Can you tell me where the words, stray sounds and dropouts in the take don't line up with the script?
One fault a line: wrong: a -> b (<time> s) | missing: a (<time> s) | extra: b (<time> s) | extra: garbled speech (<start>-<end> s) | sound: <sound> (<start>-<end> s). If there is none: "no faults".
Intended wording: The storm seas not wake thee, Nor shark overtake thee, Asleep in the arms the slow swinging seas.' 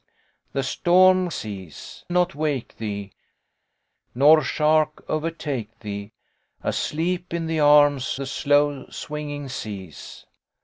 no faults